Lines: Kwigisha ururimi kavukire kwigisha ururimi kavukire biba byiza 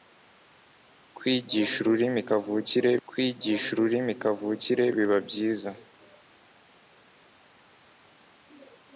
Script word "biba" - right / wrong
right